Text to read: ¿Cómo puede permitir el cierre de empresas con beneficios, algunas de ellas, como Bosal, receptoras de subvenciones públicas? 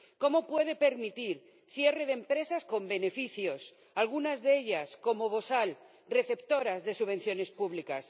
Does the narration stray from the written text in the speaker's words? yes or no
no